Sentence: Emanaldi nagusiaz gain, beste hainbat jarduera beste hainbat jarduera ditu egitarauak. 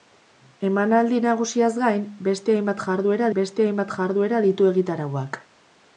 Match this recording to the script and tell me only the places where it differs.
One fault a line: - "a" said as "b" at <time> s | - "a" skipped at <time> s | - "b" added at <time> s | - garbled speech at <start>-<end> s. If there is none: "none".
none